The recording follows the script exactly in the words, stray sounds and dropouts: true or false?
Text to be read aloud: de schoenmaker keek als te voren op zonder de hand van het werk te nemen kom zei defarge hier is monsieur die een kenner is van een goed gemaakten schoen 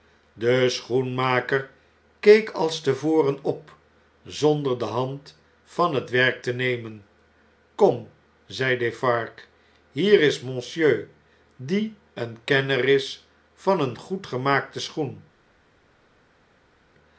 true